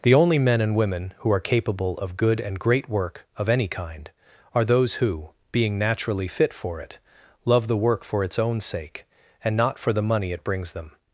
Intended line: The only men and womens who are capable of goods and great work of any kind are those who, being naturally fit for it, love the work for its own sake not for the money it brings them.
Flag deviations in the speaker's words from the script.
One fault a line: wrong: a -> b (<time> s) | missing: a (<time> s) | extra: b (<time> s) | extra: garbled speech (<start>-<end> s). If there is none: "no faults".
wrong: womens -> women (0.8 s)
wrong: goods -> good (2.2 s)
extra: and (9.4 s)